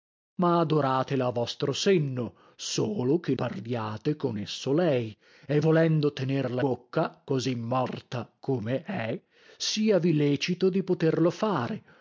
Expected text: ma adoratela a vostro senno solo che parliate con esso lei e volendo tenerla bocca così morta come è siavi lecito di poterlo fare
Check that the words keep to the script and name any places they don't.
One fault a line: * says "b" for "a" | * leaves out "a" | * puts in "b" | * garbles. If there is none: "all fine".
all fine